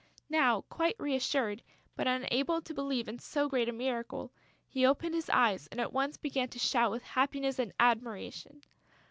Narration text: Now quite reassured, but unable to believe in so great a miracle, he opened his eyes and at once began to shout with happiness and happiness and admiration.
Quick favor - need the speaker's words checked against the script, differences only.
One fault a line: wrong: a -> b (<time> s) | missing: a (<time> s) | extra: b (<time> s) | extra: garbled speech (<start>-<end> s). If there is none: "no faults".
missing: happiness and (7.7 s)